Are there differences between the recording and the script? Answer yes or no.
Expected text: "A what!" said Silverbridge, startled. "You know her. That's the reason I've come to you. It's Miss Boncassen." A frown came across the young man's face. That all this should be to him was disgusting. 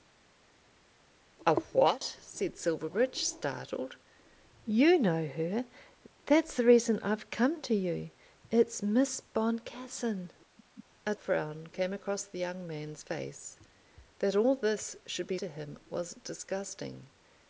no